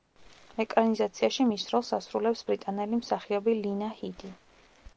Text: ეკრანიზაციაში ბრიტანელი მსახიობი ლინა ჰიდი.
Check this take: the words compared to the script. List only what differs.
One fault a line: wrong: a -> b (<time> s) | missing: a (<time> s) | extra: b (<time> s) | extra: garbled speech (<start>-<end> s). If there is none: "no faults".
extra: მის როლს ასრულებს (1.5 s)